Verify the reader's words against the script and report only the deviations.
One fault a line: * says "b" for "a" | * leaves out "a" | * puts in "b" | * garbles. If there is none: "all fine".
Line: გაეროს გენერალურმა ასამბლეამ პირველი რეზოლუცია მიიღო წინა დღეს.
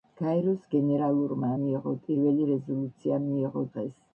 * says "მიიღო" for "ასამბლეამ"
* leaves out "წინა"